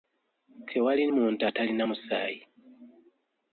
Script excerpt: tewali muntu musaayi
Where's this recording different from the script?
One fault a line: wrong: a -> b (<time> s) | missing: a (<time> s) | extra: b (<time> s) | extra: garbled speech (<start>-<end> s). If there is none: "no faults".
extra: atalina (1.5 s)